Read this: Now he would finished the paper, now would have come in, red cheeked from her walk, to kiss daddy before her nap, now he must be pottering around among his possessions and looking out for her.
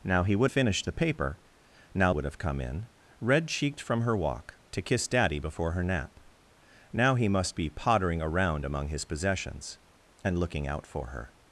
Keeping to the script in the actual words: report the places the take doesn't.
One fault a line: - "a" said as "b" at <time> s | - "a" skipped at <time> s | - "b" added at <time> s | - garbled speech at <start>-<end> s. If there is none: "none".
none